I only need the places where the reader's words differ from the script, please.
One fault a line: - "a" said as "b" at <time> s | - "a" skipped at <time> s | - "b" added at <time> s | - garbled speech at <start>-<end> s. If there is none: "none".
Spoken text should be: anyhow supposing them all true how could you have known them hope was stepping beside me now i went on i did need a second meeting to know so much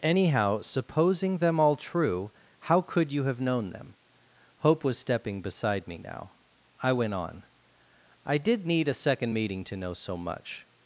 none